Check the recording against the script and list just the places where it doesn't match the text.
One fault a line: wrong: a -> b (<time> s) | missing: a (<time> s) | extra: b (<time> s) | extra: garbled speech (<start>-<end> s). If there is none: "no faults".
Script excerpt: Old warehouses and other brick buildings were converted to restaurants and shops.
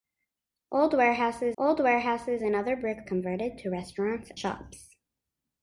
extra: old warehouses (1.6 s)
missing: buildings were (3.0 s)
missing: and (4.3 s)